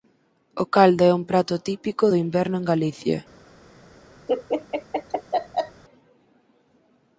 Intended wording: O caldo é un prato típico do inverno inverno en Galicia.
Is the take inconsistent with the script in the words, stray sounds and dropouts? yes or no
yes